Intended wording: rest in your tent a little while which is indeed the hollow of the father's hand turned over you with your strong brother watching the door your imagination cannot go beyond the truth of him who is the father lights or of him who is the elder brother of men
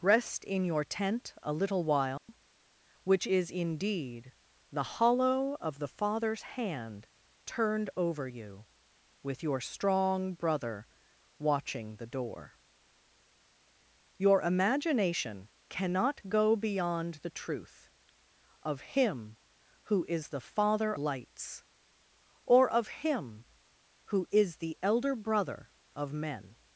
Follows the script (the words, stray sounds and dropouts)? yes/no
no